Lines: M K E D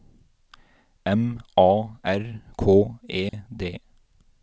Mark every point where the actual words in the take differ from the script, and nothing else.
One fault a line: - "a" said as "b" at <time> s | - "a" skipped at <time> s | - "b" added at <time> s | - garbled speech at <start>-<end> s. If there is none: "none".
- "A R" added at 1.6 s